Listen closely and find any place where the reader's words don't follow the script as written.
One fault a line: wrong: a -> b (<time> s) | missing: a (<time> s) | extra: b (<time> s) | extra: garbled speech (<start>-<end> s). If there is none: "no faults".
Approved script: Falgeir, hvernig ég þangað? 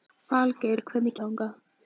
no faults